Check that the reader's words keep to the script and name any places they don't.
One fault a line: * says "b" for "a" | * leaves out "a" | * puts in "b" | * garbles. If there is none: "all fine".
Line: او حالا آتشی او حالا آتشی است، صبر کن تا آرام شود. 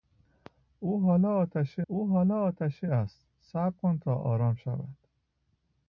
all fine